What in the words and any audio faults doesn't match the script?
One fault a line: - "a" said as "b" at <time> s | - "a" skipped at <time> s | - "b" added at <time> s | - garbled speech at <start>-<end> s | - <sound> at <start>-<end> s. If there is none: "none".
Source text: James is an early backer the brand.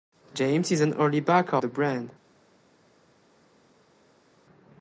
none